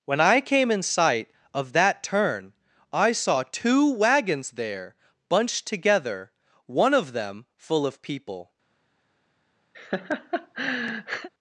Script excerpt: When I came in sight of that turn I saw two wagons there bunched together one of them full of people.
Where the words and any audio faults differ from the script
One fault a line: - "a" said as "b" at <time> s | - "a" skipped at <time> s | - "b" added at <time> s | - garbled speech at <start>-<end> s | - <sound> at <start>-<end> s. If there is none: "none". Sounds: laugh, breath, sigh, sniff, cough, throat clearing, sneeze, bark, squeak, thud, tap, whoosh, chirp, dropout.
- laugh at 9.7-11.3 s